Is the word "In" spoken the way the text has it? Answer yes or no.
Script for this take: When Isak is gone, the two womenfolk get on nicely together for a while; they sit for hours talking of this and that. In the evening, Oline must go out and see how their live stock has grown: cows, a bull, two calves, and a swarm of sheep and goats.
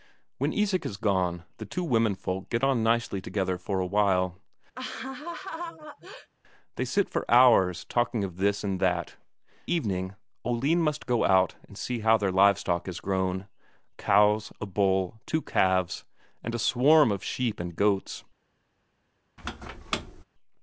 no